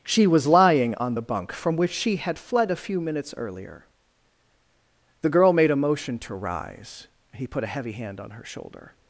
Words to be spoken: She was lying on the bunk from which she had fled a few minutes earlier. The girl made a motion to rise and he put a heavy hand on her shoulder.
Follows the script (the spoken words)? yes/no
no